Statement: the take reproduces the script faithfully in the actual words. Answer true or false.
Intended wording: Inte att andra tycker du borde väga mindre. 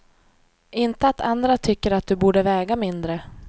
false